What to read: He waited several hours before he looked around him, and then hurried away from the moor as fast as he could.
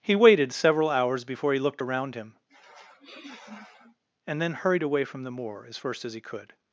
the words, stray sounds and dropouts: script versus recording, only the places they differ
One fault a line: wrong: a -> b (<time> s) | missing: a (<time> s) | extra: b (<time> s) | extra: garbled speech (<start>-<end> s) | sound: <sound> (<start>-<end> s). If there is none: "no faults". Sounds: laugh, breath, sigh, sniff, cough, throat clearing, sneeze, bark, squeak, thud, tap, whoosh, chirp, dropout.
sound: sniff (2.5-4.0 s)
wrong: fast -> first (5.8 s)